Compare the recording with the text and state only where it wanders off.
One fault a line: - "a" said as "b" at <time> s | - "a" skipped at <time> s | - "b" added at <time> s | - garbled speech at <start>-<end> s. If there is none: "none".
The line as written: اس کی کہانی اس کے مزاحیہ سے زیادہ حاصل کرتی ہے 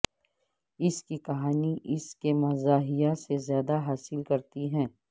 none